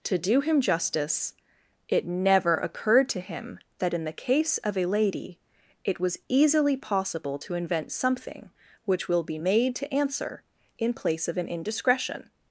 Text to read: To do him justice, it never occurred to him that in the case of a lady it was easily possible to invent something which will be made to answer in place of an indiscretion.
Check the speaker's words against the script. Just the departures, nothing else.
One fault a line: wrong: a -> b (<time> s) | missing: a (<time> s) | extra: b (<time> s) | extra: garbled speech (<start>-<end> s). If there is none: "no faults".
no faults